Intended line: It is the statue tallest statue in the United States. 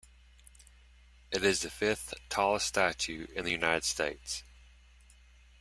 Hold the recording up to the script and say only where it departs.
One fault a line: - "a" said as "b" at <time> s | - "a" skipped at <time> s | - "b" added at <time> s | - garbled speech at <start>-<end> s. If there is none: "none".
- "statue" said as "fifth" at 1.7 s